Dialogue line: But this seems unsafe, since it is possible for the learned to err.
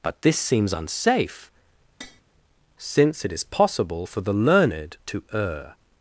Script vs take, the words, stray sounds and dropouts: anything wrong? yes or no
yes